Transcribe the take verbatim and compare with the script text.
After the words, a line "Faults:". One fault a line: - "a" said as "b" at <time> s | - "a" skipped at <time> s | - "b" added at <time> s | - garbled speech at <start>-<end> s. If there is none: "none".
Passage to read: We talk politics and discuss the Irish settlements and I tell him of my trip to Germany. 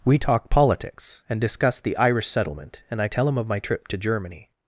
We talk politics and discuss the Irish settlement and I tell him of my trip to Germany.
Faults:
- "settlements" said as "settlement" at 2.3 s